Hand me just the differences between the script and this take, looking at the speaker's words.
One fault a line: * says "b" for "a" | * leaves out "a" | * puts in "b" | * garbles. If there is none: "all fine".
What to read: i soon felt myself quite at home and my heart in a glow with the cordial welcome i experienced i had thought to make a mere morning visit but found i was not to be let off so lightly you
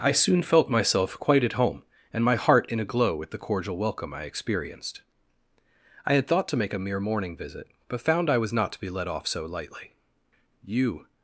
all fine